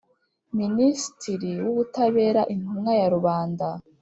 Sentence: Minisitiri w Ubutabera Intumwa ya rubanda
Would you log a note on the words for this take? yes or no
no